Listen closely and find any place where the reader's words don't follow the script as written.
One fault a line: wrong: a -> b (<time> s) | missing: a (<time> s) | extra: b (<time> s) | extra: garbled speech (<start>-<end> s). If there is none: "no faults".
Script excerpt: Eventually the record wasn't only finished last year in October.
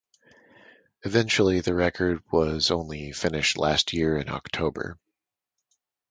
wrong: wasn't -> was (2.3 s)